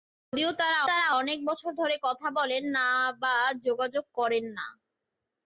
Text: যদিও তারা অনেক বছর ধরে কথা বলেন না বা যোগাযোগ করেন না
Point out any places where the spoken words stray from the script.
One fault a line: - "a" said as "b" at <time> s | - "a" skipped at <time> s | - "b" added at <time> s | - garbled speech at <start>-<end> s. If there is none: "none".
- "তারা" added at 0.9 s